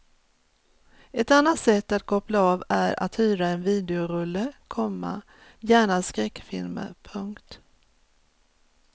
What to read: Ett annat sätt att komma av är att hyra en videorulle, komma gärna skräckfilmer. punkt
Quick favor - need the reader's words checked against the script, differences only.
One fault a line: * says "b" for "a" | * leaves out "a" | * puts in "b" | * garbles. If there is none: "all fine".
* says "koppla" for "komma"